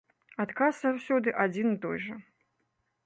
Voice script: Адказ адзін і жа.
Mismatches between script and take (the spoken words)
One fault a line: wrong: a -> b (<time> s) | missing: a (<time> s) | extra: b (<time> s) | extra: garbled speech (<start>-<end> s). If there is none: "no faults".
extra: заўсёды (0.8 s)
extra: той (1.9 s)